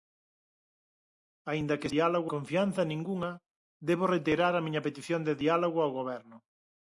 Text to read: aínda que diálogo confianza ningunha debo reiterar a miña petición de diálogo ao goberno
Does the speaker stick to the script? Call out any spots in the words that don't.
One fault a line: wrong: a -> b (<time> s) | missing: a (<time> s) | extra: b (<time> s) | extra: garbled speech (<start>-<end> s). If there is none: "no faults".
no faults